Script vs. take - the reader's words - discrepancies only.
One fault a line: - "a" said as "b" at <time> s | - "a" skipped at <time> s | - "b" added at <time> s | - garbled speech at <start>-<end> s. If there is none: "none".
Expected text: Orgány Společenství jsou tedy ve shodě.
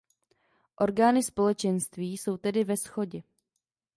none